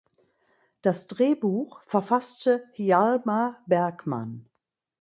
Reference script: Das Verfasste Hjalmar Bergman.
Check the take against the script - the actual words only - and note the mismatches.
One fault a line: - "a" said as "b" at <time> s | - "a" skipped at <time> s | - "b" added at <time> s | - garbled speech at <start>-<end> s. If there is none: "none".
- "Drehbuch" added at 1.1 s